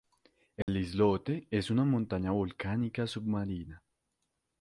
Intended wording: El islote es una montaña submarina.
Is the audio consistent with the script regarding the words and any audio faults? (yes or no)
no